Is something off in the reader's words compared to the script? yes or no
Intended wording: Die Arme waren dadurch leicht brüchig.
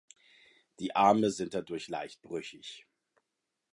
yes